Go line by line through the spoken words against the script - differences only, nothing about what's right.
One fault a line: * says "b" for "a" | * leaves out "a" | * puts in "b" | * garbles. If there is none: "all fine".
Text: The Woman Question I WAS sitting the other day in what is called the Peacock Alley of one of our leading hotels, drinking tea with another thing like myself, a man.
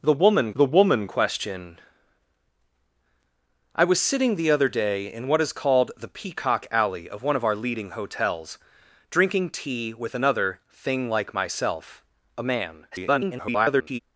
* puts in "the Woman"
* garbles